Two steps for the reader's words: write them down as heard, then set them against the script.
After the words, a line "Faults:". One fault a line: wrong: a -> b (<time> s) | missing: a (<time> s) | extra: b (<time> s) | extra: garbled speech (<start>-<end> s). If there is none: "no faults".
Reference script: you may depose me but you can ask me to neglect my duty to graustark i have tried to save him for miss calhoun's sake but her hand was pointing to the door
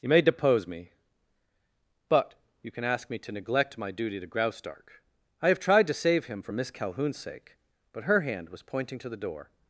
you may depose me but you can ask me to neglect my duty to graustark i have tried to save him for miss calhoun's sake but her hand was pointing to the door
Faults:
no faults